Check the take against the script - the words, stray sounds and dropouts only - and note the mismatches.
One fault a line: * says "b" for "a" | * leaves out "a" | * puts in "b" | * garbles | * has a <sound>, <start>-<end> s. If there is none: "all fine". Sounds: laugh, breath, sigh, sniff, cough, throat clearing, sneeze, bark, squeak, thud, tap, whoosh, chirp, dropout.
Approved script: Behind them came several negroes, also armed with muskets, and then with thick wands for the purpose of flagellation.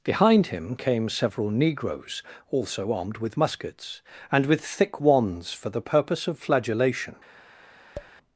* says "him" for "them"
* leaves out "then"
* has a tap, 7.9-8.1 s